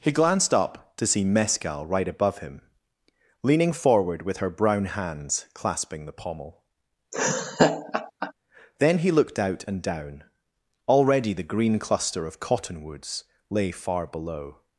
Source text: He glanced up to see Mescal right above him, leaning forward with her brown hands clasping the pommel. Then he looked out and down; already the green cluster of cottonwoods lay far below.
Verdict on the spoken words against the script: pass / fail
pass